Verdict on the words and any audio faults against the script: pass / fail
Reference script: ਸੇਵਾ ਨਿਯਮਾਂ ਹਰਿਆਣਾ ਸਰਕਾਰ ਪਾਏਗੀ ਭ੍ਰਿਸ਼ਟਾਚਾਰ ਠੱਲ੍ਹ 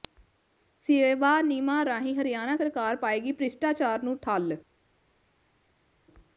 fail